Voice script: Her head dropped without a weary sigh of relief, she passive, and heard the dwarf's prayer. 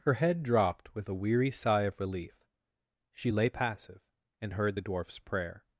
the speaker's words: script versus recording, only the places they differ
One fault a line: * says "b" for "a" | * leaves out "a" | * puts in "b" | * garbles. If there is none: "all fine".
* says "with" for "without"
* puts in "lay"